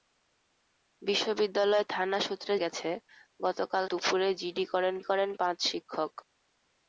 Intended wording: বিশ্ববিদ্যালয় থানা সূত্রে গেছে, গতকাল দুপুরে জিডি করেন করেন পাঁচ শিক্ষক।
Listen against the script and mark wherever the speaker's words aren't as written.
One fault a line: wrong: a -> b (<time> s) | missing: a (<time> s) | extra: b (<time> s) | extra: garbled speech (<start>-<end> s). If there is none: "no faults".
no faults